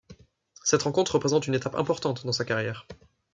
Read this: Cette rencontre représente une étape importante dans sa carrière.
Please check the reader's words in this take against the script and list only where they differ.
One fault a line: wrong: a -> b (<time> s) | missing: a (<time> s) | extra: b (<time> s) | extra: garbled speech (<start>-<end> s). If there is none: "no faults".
no faults